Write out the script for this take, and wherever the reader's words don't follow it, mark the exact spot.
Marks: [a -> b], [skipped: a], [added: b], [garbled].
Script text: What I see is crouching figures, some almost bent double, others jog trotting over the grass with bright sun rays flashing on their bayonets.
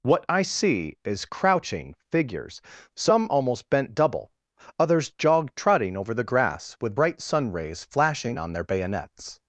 What I see is crouching figures, some almost bent double, others jog trotting over the grass with bright sun rays flashing on their bayonets.